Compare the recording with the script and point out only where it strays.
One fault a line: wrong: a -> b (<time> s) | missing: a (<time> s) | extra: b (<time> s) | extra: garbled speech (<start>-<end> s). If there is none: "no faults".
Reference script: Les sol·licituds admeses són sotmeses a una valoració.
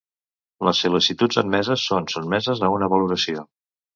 no faults